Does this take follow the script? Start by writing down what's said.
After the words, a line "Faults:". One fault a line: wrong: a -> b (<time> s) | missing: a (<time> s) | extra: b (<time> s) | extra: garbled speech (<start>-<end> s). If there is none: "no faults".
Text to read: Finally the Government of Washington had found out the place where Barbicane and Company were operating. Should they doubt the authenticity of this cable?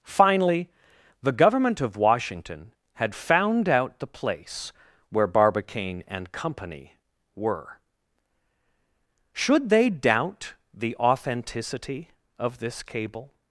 Finally the Government of Washington had found out the place where Barbicane and Company were. Should they doubt the authenticity of this cable?
Faults:
missing: operating (7.8 s)